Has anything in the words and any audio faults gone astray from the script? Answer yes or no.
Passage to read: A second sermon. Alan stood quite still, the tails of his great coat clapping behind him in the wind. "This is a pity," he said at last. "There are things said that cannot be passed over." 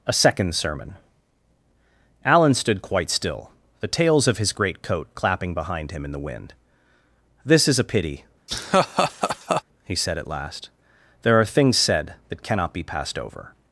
yes